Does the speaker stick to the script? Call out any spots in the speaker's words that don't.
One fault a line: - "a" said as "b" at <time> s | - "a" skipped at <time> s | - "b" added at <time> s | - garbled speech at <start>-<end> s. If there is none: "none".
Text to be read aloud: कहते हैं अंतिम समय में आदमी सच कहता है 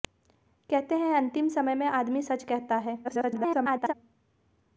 - garbled speech at 3.0-3.9 s